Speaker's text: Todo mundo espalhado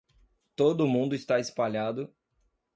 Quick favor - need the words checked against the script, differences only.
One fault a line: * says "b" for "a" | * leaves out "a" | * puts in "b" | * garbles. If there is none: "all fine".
* puts in "está"